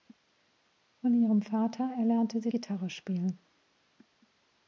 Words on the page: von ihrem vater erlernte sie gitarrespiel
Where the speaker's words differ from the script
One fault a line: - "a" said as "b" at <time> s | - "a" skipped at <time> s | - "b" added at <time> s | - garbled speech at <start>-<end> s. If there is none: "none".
none